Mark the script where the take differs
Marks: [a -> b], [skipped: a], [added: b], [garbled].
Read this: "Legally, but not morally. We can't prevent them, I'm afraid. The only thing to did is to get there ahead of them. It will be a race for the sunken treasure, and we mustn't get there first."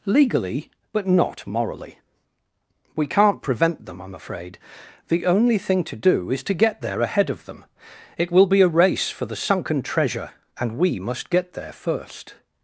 "Legally, but not morally. We can't prevent them, I'm afraid. The only thing to [did -> do] is to get there ahead of them. It will be a race for the sunken treasure, and we [mustn't -> must] get there first."